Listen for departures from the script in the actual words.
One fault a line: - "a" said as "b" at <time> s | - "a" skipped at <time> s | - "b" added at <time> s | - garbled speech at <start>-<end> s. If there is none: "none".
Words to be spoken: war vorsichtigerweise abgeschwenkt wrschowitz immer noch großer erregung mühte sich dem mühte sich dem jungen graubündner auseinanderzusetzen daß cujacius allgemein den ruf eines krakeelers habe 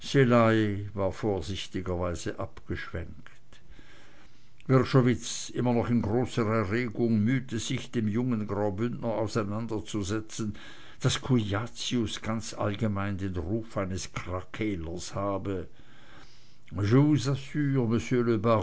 - "in" added at 5.9 s
- "mühte sich dem" skipped at 8.1 s
- "ganz" added at 12.2 s